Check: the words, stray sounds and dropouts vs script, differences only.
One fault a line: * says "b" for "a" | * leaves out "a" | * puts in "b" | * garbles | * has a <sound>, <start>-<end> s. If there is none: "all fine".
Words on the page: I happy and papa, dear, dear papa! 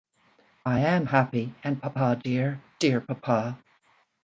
* puts in "am"